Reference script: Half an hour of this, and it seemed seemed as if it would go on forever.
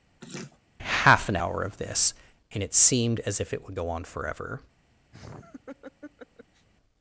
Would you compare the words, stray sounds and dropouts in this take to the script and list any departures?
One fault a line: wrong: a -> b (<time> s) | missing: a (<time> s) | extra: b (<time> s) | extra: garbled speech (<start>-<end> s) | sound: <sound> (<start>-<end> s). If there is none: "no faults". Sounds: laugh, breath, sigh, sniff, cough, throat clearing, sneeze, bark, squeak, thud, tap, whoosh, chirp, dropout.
sound: laugh (0.2-0.6 s)
missing: seemed (3.2 s)
sound: laugh (5.1-6.7 s)